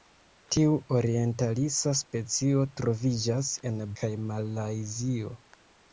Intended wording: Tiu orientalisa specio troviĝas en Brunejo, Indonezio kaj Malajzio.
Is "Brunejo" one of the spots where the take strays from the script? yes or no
yes